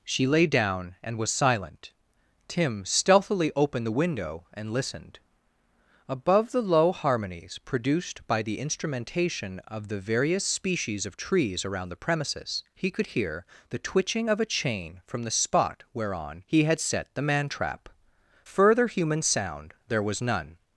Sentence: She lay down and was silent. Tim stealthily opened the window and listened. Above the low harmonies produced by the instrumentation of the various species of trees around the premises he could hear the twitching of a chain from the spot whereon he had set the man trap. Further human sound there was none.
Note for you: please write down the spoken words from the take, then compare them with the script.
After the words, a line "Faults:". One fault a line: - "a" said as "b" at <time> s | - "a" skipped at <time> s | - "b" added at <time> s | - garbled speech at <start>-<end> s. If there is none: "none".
She lay down and was silent. Tim stealthily opened the window and listened. Above the low harmonies produced by the instrumentation of the various species of trees around the premises he could hear the twitching of a chain from the spot whereon he had set the man trap. Further human sound there was none.
Faults:
none